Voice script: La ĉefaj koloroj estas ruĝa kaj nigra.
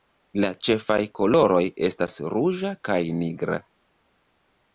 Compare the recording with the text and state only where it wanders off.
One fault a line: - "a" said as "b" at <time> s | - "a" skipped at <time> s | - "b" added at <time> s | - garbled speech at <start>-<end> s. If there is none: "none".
none